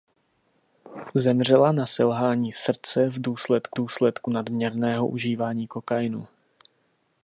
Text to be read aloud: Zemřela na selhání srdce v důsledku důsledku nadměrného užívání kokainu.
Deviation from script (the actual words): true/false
false